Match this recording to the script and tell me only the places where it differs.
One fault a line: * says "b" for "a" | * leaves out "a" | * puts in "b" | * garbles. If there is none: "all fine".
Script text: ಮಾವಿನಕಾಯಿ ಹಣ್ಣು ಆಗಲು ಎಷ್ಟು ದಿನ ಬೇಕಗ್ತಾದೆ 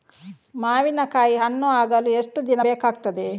all fine